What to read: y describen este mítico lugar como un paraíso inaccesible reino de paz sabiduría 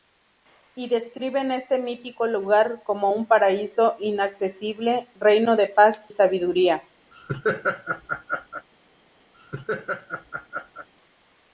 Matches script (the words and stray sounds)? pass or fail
fail